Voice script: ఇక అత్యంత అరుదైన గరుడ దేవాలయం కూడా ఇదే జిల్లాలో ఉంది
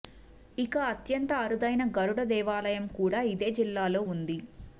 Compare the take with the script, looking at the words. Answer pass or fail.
pass